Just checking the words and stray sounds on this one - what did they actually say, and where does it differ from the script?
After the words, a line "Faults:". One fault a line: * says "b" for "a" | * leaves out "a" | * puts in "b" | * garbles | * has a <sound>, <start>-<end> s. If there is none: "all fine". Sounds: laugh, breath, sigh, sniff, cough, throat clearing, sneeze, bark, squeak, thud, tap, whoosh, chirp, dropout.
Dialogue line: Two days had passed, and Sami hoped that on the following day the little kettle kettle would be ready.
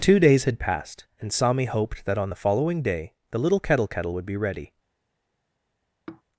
Two days had passed, and Sami hoped that on the following day the little kettle kettle would be ready.
Faults:
* has a sigh, 6.1-6.2 s